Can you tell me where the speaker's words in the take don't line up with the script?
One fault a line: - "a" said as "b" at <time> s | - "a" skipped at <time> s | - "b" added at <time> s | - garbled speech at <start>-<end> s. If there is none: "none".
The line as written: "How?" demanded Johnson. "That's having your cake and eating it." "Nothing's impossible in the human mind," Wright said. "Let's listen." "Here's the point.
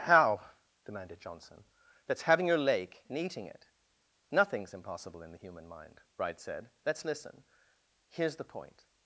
- "cake" said as "lake" at 2.6 s